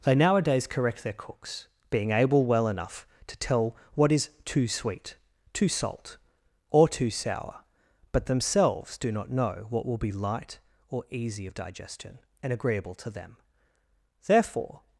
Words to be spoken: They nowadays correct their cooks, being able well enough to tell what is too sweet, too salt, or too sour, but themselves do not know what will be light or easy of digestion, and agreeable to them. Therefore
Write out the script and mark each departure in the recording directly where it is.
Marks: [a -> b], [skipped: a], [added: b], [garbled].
They nowadays correct their cooks, being able well enough to tell what is too sweet, too salt, or too sour, but themselves do not know what will be light or easy of digestion, and agreeable to them. Therefore